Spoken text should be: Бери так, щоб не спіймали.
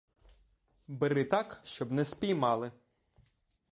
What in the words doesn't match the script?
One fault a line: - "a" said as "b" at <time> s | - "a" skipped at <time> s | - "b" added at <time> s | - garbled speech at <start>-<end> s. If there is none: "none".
none